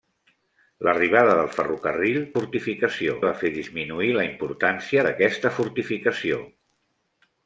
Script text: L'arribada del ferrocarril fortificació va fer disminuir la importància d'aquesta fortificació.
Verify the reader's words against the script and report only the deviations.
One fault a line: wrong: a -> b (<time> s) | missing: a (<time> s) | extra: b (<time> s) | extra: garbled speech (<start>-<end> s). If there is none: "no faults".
no faults